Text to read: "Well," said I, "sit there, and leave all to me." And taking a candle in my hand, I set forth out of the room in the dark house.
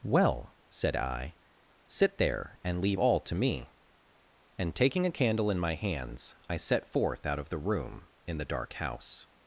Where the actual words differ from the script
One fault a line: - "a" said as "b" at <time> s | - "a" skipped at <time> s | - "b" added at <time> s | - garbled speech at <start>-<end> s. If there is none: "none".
- "hand" said as "hands" at 5.8 s